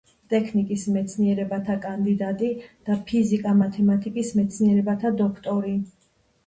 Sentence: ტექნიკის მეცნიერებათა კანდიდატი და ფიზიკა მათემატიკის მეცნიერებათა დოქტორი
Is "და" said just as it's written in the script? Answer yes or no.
yes